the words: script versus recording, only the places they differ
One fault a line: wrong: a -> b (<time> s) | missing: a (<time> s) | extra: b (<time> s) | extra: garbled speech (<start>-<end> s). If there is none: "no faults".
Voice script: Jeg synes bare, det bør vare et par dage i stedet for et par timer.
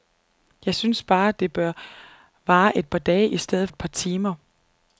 missing: for (3.7 s)